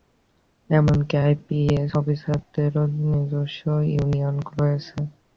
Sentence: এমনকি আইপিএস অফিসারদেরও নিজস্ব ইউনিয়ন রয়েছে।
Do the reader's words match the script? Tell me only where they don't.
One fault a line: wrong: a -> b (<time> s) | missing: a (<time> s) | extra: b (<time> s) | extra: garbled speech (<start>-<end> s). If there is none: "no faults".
no faults